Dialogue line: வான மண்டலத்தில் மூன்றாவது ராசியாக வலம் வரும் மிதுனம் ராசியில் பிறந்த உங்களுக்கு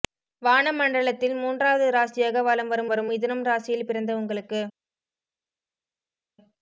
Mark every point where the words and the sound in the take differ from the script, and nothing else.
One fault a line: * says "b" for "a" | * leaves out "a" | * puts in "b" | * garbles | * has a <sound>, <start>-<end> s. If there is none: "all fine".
* puts in "வரும்"